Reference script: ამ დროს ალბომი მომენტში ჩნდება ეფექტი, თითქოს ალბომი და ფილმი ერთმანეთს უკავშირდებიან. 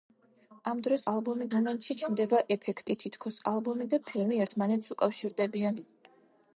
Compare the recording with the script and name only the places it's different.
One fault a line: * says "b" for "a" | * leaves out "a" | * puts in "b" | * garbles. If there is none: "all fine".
all fine